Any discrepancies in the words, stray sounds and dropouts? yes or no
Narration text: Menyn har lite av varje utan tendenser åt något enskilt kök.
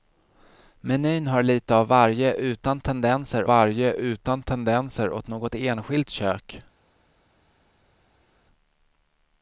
yes